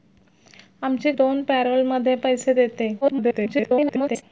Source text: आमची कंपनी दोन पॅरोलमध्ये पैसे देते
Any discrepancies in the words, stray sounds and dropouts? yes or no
yes